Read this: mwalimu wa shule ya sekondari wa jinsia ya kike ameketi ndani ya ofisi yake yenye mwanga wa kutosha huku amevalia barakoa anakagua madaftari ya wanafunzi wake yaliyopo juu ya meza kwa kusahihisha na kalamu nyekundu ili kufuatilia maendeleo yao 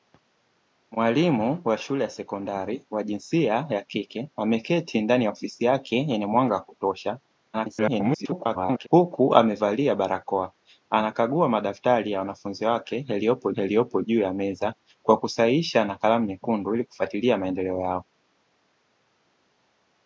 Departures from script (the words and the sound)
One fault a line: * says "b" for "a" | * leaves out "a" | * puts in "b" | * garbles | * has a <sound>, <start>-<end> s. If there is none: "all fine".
* garbles
* puts in "yaliyopo"